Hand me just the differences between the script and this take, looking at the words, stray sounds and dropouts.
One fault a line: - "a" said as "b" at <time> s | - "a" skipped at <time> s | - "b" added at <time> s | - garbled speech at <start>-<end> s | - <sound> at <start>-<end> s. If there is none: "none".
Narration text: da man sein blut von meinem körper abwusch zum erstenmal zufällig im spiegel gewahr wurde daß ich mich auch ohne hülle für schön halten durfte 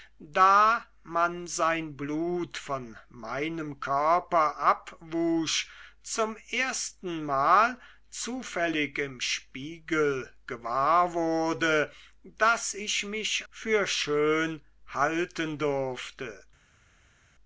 - "auch ohne hülle" skipped at 13.4 s